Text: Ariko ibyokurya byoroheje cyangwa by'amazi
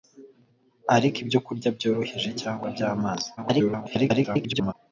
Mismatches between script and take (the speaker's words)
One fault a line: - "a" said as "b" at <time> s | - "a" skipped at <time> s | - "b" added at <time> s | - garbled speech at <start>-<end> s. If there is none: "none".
- garbled speech at 3.4-4.7 s